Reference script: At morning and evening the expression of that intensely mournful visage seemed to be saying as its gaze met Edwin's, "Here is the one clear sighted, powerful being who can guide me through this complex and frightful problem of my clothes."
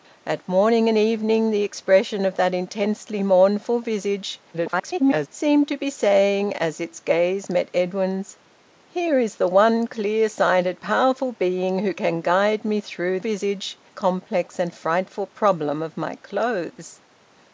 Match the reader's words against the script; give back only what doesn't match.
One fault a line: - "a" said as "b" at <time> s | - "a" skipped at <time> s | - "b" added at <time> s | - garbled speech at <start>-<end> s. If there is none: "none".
- garbled speech at 4.5-5.3 s
- "this" said as "visage" at 13.2 s